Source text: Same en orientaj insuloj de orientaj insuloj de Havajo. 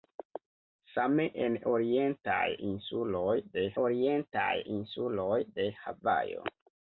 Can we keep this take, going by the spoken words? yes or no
yes